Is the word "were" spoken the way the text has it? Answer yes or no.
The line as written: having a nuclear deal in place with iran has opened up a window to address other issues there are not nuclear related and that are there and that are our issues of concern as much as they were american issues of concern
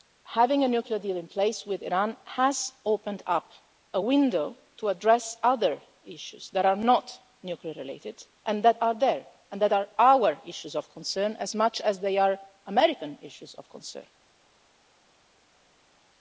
no